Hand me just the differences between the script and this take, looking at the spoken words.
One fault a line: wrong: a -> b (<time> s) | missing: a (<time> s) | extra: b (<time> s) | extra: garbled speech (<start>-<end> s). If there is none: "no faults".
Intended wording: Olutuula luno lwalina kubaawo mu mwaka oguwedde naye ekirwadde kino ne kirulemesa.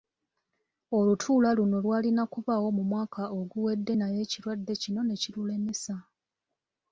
no faults